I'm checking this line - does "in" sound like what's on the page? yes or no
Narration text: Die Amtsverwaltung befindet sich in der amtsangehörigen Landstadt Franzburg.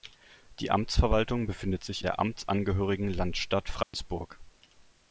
no